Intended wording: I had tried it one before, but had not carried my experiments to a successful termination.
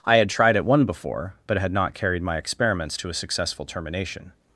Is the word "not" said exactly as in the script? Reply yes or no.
yes